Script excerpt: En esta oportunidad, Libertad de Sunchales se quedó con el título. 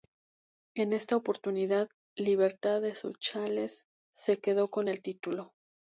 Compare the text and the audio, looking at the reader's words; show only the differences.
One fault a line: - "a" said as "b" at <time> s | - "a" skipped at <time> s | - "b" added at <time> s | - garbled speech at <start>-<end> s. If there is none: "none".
none